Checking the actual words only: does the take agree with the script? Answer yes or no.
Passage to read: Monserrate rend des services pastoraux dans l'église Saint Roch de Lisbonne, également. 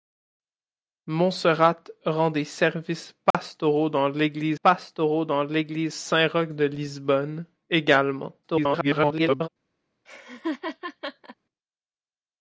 no